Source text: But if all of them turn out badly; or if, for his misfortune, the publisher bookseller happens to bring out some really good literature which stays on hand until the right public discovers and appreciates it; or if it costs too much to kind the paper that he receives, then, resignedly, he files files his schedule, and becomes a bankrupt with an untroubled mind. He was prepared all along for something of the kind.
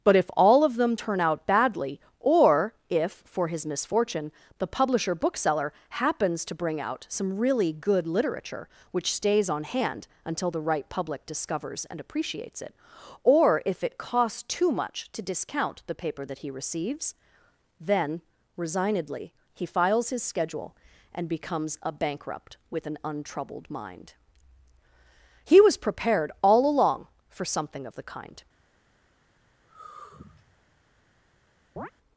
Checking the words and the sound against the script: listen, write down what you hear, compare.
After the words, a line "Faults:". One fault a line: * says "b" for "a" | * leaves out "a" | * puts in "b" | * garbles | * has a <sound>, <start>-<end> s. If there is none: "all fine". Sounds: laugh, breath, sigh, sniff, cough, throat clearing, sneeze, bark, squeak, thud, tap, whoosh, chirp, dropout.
But if all of them turn out badly; or if, for his misfortune, the publisher bookseller happens to bring out some really good literature which stays on hand until the right public discovers and appreciates it; or if it costs too much to discount the paper that he receives, then, resignedly, he files his schedule, and becomes a bankrupt with an untroubled mind. He was prepared all along for something of the kind.
Faults:
* says "discount" for "kind"
* leaves out "files"
* has a sigh, 29.6-30.7 s
* has a chirp, 31.8-31.9 s